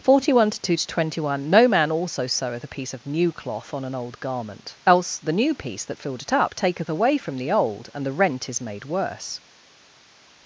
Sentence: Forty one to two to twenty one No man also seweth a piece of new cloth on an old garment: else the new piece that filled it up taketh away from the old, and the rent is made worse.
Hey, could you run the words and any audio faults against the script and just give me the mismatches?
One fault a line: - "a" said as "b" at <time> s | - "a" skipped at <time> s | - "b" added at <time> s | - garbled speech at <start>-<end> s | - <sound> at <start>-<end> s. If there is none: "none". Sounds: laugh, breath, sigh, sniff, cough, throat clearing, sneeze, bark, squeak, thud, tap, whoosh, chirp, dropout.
none